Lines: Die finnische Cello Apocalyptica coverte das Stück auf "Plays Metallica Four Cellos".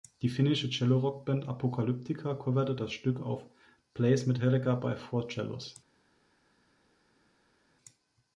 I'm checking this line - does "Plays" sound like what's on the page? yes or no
yes